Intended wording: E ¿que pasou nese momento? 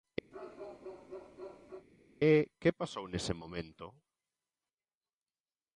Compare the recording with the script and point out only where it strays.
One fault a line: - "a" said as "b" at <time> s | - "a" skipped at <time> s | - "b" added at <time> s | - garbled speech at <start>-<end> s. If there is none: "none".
none